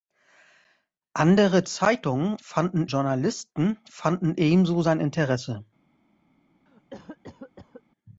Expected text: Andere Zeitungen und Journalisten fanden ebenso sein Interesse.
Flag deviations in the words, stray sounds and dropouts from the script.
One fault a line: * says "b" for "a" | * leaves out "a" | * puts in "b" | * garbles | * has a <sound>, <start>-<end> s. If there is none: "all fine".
* says "fanden" for "und"
* has a cough, 6.7-7.8 s